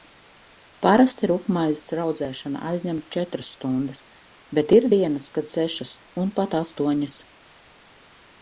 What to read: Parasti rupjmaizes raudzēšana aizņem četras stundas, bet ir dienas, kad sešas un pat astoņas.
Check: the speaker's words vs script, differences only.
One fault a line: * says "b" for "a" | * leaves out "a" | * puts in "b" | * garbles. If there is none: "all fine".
all fine